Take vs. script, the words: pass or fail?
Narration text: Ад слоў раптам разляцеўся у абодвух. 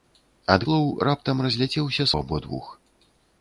pass